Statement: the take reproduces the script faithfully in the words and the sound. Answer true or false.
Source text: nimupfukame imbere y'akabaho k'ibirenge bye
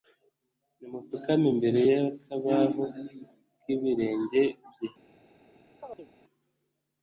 false